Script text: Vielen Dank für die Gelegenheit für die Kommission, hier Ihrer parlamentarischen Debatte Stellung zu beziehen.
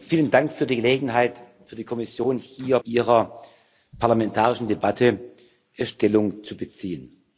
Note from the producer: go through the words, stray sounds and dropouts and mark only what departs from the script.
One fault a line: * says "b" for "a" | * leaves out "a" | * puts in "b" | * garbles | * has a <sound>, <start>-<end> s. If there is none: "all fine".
all fine